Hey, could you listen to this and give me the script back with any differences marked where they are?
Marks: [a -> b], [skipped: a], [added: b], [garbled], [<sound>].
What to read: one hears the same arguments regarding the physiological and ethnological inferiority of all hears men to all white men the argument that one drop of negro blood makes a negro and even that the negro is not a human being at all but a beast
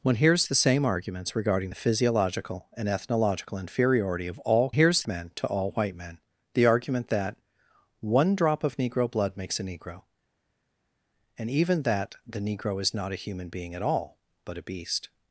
one hears the same arguments regarding the physiological and ethnological inferiority of all hears men to all white men the argument that one drop of negro blood makes a negro and even that the negro is not a human being at all but a beast